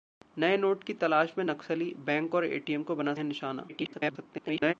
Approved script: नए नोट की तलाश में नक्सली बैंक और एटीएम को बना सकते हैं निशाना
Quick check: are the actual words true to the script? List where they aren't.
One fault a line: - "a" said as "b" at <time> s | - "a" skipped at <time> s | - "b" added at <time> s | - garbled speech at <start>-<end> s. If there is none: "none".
- "सकते" skipped at 3.1 s
- garbled speech at 3.7-4.7 s